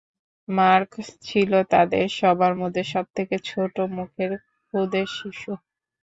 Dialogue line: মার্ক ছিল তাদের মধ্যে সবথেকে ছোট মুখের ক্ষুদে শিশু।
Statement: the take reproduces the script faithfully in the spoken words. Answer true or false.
false